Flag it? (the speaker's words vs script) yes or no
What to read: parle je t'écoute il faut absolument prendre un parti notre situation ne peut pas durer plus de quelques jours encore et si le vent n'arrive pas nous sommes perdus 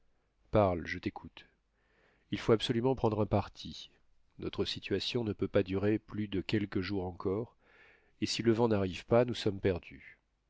no